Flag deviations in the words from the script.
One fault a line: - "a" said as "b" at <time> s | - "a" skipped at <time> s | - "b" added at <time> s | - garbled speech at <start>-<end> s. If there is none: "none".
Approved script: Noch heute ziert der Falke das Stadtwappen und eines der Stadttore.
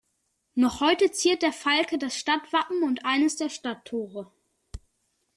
none